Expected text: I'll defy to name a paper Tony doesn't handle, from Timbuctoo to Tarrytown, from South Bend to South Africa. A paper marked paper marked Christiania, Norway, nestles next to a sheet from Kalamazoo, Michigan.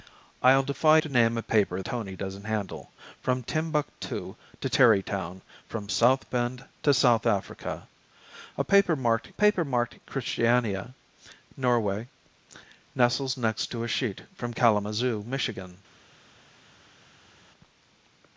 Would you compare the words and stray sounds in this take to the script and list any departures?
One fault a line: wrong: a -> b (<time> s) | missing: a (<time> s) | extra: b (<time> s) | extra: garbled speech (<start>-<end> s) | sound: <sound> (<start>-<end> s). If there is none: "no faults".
no faults